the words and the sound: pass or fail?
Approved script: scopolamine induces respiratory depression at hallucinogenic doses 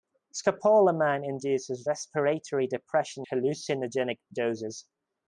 fail